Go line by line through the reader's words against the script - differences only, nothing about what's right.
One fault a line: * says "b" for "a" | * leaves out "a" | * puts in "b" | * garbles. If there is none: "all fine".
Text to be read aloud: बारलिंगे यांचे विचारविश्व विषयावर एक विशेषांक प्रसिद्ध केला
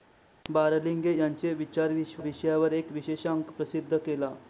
all fine